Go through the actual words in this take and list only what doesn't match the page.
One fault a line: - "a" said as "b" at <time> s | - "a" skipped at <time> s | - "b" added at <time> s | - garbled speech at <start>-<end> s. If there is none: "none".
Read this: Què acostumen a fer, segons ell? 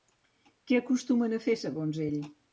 none